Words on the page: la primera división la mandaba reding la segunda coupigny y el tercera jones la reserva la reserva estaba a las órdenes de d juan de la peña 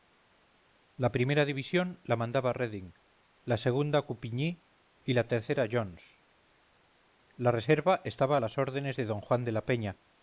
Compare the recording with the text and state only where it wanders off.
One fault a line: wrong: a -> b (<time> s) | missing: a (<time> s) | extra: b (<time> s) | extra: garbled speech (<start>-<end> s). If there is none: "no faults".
wrong: el -> la (5.1 s)
missing: la reserva (8.0 s)